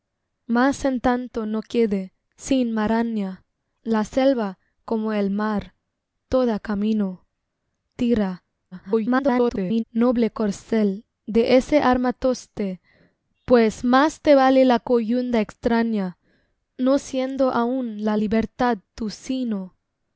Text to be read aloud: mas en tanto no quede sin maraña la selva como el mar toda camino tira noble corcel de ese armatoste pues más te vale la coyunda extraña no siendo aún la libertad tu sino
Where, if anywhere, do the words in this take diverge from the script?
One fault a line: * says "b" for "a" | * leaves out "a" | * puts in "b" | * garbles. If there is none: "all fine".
* garbles